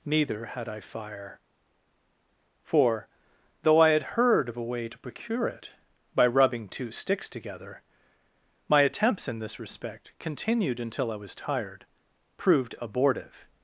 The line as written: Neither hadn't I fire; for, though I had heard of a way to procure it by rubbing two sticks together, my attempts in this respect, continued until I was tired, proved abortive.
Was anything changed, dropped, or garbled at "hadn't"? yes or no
yes